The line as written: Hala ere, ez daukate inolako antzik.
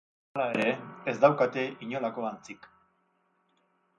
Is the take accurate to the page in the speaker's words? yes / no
yes